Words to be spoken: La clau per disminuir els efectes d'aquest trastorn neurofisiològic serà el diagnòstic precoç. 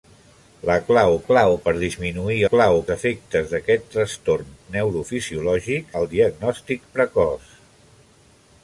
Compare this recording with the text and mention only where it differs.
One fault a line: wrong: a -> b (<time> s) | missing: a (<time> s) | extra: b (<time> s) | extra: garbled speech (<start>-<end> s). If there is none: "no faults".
extra: clau (1.3 s)
wrong: els -> clau (2.5 s)
missing: serà (5.9 s)